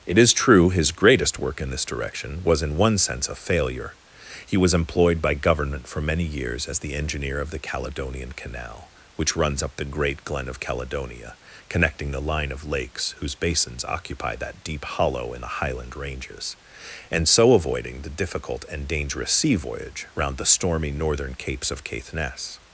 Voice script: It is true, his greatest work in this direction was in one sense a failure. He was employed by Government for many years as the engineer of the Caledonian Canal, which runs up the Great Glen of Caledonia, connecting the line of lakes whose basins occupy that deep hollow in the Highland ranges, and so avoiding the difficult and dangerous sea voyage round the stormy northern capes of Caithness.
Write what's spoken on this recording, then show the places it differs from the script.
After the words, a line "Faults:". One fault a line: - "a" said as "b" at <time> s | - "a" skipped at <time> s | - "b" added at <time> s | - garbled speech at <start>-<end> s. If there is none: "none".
It is true, his greatest work in this direction was in one sense a failure. He was employed by Government for many years as the engineer of the Caledonian Canal, which runs up the Great Glen of Caledonia, connecting the line of lakes whose basins occupy that deep hollow in the Highland ranges, and so avoiding the difficult and dangerous sea voyage round the stormy northern capes of Caithness.
Faults:
none